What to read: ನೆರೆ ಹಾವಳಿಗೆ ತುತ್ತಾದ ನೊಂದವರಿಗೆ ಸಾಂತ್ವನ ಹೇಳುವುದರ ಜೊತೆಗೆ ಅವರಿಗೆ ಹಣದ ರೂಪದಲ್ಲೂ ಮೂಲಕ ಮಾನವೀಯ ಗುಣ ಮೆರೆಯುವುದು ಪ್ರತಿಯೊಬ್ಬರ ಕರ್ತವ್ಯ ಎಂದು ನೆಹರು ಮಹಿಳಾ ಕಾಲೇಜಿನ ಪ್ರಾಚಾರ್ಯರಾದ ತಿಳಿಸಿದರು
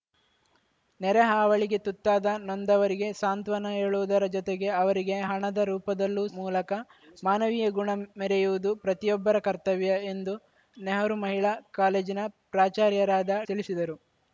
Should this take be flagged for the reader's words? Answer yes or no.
no